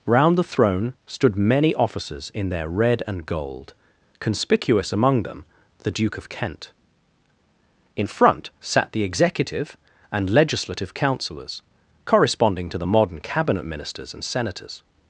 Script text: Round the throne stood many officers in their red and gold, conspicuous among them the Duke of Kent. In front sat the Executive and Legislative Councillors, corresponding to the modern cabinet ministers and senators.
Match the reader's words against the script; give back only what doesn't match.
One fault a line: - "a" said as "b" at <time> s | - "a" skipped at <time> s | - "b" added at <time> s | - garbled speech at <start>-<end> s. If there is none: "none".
none